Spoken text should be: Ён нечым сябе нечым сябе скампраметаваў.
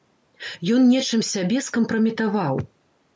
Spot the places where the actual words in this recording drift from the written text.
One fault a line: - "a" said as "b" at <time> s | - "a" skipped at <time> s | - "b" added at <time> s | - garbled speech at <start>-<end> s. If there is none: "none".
- "нечым сябе" skipped at 1.6 s